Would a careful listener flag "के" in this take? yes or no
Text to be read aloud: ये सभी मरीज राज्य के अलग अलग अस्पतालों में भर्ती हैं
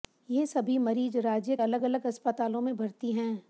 yes